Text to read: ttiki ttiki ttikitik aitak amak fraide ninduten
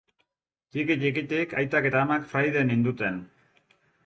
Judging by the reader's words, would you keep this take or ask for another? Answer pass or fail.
fail